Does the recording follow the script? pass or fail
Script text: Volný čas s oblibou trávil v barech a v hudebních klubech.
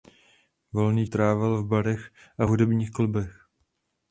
fail